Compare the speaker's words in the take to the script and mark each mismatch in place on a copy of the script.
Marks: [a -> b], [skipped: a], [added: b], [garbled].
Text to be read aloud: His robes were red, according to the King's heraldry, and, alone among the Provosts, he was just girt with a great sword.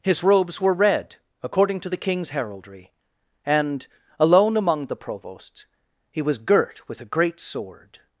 His robes were red, according to the King's heraldry, and, alone among the Provosts, he was [skipped: just] girt with a great sword.